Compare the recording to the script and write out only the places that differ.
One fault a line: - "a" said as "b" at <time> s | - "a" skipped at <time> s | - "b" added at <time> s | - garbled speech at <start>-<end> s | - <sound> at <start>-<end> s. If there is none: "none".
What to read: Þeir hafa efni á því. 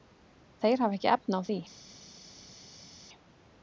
- "ekki" added at 1.0 s